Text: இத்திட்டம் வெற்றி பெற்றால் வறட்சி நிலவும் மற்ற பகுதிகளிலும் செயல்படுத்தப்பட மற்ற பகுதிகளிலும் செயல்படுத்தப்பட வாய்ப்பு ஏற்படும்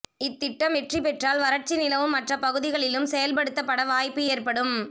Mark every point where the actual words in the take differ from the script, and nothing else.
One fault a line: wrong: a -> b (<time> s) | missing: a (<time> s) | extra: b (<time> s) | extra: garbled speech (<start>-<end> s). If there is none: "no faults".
missing: மற்ற பகுதிகளிலும் செயல்படுத்தப்பட (3.8 s)